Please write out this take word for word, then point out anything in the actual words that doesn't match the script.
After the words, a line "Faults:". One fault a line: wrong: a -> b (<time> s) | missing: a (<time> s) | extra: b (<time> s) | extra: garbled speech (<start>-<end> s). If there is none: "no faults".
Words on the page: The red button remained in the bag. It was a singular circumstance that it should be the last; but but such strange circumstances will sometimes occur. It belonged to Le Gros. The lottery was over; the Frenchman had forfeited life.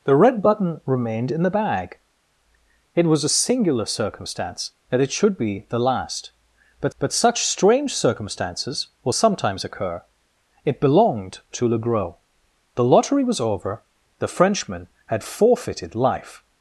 The red button remained in the bag. It was a singular circumstance that it should be the last; but but such strange circumstances will sometimes occur. It belonged to Le Gros. The lottery was over; the Frenchman had forfeited life.
Faults:
no faults